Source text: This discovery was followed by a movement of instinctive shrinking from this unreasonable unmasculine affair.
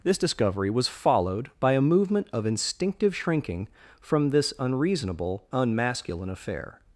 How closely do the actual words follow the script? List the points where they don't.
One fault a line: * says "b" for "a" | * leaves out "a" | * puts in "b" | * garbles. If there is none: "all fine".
all fine